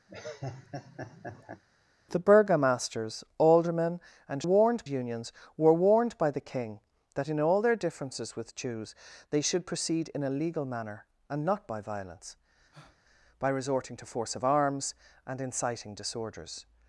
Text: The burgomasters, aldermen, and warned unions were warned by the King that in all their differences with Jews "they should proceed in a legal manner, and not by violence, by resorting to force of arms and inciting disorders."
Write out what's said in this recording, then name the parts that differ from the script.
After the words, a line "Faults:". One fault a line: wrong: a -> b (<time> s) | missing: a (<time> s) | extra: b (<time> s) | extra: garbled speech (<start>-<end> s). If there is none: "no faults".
The burgomasters, aldermen, and warned unions were warned by the King that in all their differences with Jews "they should proceed in a legal manner, and not by violence, by resorting to force of arms and inciting disorders."
Faults:
no faults